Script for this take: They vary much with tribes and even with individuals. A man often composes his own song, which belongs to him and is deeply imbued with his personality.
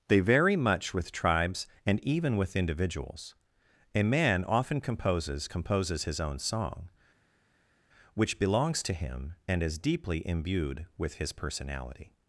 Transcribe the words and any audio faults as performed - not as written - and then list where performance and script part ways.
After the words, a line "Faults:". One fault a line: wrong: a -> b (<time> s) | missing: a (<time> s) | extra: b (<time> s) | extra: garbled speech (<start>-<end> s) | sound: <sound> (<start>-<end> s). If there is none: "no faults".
They vary much with tribes and even with individuals. A man often composes composes his own song, which belongs to him and is deeply imbued with his personality.
Faults:
extra: composes (5.4 s)